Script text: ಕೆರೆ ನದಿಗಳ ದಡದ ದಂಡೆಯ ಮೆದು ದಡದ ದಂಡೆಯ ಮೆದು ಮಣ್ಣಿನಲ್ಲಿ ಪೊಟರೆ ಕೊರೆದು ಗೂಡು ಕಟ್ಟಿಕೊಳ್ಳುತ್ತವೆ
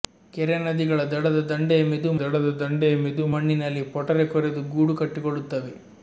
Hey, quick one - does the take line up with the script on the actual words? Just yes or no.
yes